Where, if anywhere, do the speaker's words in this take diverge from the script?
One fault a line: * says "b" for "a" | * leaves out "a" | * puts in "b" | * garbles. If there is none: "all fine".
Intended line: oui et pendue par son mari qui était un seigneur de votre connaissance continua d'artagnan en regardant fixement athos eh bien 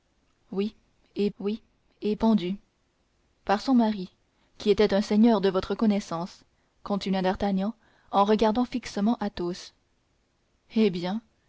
* puts in "oui et"